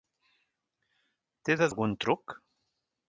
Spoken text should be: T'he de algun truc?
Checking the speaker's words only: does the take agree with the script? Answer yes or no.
yes